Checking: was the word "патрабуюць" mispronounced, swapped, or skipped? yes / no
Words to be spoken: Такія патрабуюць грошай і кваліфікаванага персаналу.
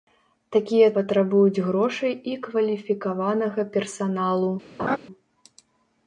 no